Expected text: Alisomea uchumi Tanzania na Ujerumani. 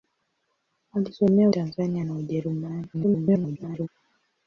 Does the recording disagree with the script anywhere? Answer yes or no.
yes